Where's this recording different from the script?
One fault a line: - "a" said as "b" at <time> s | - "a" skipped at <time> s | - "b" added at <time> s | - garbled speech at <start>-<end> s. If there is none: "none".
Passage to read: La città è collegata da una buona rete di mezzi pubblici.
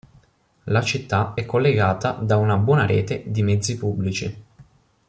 none